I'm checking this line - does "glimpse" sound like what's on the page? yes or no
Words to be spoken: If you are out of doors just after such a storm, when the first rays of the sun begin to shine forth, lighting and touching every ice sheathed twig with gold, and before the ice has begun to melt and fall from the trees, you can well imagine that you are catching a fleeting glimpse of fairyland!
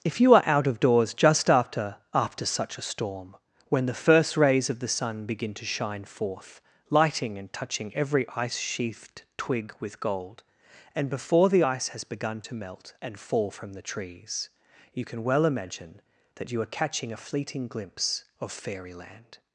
yes